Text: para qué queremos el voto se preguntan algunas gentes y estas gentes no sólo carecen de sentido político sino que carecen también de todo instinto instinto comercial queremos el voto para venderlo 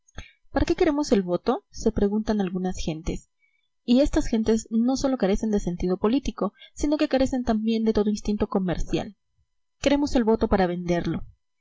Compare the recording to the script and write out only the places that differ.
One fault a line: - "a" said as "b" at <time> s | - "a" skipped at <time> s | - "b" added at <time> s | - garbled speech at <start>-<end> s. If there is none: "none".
- "instinto" skipped at 8.5 s